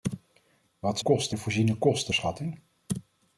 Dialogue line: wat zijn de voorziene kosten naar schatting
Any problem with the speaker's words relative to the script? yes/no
yes